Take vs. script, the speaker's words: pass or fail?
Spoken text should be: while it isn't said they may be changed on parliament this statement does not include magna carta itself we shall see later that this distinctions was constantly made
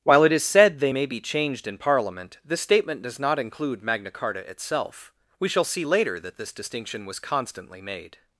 fail